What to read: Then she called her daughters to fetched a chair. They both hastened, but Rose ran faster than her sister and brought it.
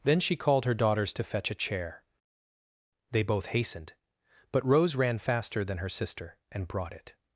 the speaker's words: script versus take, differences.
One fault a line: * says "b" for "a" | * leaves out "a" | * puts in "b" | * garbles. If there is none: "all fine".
* says "fetch" for "fetched"